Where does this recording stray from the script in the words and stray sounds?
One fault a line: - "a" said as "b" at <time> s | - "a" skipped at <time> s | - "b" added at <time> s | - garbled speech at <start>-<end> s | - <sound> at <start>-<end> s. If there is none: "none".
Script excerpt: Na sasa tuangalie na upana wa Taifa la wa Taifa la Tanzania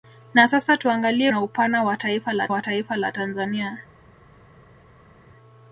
none